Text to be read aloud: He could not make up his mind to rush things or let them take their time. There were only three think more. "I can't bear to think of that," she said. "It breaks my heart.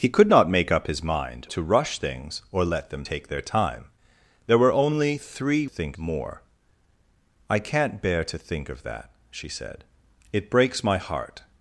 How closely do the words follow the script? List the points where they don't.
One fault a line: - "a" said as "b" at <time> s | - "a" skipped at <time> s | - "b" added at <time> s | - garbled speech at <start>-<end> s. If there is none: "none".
none